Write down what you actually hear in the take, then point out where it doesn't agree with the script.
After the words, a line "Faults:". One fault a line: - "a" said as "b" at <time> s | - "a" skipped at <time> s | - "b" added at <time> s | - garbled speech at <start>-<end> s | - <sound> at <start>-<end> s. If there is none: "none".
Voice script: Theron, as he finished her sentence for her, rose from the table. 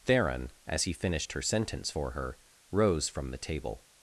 Theron, as he finished her sentence for her, rose from the table.
Faults:
none